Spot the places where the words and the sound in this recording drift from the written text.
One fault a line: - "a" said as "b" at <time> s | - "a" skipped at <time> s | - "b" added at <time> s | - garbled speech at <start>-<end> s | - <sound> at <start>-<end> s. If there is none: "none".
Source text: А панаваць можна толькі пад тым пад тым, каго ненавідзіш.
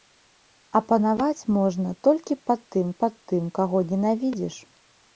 none